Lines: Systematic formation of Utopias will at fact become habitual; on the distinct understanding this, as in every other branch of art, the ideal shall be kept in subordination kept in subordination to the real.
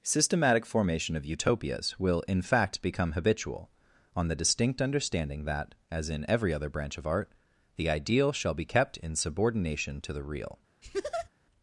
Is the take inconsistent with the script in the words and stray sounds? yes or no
yes